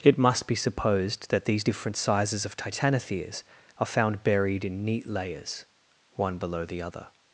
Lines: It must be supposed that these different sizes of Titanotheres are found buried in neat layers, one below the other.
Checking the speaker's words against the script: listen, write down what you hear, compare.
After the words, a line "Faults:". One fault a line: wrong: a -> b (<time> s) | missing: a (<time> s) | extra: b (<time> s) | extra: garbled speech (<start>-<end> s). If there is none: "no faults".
It must be supposed that these different sizes of Titanotheres are found buried in neat layers, one below the other.
Faults:
no faults